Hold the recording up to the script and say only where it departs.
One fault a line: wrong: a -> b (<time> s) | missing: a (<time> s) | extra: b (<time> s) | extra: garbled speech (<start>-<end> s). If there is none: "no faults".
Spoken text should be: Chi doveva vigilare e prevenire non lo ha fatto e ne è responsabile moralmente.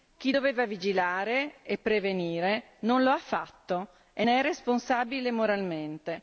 no faults